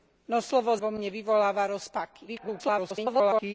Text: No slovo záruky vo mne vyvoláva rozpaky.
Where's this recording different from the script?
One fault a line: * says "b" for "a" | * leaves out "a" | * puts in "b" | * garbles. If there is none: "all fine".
* leaves out "záruky"
* garbles